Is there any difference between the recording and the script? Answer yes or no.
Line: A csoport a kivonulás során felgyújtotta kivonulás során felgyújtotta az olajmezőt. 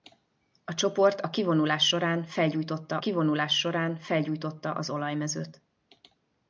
no